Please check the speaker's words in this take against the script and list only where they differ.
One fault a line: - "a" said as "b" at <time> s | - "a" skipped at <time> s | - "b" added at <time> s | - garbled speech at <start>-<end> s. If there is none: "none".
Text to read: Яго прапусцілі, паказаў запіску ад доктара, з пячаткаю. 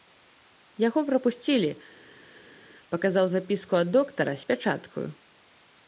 none